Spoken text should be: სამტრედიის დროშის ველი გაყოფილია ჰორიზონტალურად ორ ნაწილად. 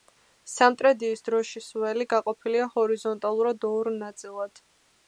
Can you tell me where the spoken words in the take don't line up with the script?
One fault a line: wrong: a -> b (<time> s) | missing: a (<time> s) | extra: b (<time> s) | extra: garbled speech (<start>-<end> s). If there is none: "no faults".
no faults